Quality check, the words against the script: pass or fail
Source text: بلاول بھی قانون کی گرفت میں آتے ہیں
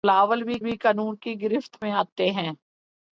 fail